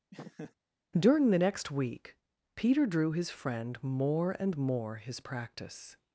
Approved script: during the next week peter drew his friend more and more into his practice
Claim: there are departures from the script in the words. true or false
true